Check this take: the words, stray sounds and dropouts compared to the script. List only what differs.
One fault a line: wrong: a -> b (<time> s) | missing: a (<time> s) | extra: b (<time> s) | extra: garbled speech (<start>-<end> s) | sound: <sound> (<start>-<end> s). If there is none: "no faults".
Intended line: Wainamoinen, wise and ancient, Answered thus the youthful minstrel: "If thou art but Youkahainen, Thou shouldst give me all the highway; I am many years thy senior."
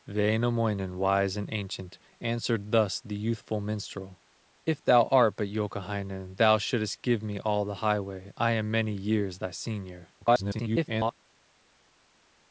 extra: garbled speech (10.2-11.1 s)